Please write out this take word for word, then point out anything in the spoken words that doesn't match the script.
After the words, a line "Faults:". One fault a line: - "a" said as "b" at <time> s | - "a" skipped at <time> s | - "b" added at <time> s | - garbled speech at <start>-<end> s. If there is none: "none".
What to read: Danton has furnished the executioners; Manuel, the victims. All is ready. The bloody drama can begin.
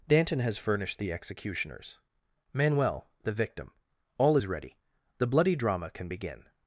Danton has furnished the executioners; Manuel, the victim. All is ready. The bloody drama can begin.
Faults:
- "victims" said as "victim" at 3.3 s